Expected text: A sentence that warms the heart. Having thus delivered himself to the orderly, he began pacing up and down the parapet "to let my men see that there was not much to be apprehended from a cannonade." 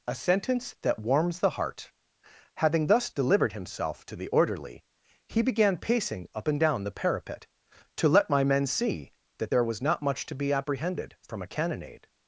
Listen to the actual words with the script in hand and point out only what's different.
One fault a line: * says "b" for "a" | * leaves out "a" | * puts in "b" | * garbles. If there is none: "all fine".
all fine